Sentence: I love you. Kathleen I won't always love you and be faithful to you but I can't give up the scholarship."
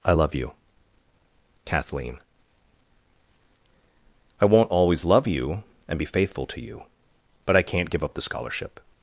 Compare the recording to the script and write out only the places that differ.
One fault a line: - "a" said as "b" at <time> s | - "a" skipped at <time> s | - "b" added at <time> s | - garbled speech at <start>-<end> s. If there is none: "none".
none